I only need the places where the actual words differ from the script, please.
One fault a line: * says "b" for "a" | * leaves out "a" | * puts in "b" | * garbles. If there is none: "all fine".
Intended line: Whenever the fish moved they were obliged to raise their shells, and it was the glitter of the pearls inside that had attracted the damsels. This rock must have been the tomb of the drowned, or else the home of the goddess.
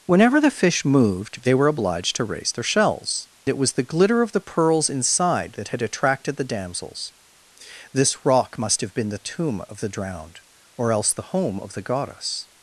* leaves out "and"